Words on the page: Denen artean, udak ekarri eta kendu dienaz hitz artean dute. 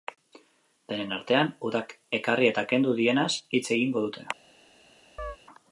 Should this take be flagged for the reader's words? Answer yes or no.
yes